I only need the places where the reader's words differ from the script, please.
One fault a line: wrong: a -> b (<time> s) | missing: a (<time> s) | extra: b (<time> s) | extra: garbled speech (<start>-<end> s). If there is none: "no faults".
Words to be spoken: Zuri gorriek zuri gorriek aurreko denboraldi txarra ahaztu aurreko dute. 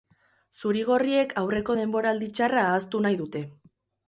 missing: zuri gorriek (1.4 s)
wrong: aurreko -> nahi (3.1 s)